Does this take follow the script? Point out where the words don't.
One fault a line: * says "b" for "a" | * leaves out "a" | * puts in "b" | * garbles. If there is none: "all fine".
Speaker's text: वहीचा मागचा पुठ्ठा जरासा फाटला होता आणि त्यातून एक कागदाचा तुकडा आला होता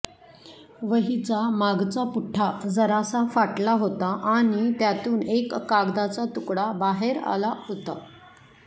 * puts in "बाहेर"